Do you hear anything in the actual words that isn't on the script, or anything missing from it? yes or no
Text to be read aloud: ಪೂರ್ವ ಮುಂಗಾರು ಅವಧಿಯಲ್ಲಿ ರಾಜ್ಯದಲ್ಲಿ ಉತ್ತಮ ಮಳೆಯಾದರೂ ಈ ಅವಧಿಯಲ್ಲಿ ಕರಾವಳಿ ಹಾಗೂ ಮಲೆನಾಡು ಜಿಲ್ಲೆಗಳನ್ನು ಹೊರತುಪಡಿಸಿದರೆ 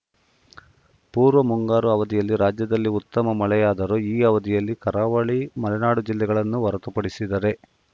yes